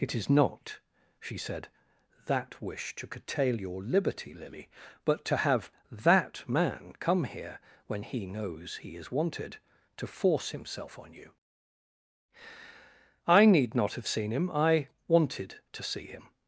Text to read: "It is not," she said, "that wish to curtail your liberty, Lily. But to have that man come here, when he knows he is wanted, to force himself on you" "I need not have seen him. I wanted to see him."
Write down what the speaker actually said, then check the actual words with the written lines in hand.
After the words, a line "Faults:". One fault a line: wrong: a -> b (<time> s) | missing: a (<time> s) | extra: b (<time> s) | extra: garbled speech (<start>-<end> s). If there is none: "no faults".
"It is not," she said, "that wish to curtail your liberty, Lily. But to have that man come here, when he knows he is wanted, to force himself on you" "I need not have seen him. I wanted to see him."
Faults:
no faults